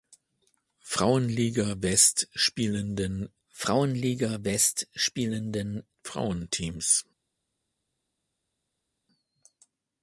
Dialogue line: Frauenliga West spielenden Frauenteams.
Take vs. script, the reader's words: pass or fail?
fail